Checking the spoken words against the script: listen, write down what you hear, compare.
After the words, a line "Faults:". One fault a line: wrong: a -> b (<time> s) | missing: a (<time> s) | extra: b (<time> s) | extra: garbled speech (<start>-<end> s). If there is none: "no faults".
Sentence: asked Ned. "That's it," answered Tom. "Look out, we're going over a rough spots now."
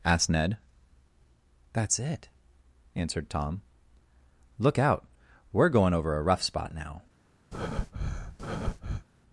asked Ned. "That's it," answered Tom. "Look out, we're going over a rough spot now."
Faults:
wrong: spots -> spot (6.4 s)